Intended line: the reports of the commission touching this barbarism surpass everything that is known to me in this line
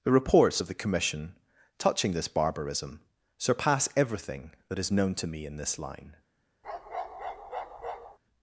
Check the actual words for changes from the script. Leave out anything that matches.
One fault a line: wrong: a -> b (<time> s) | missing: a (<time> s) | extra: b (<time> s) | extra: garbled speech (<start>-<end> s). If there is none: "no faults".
no faults